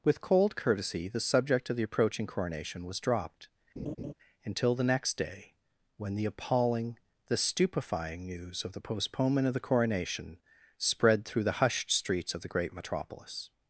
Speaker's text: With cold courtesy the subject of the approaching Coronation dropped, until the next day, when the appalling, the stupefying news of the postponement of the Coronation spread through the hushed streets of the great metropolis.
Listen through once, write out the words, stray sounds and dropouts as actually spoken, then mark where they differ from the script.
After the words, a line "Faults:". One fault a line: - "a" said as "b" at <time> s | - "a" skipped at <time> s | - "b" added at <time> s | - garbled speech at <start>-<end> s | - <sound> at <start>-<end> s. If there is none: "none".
With cold courtesy the subject of the approaching Coronation was dropped, until the next day, when the appalling, the stupefying news of the postponement of the Coronation spread through the hushed streets of the great metropolis.
Faults:
- "was" added at 2.9 s
- laugh at 3.8-4.1 s